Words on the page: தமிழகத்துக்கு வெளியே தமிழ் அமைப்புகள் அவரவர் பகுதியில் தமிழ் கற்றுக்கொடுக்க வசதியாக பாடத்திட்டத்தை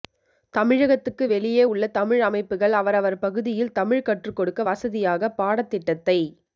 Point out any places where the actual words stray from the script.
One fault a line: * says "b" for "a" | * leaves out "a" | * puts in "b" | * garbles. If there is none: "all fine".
* puts in "உள்ள"